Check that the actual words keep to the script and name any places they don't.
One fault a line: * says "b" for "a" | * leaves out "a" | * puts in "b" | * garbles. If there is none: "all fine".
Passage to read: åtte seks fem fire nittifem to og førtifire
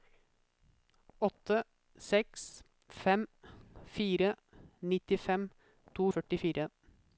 all fine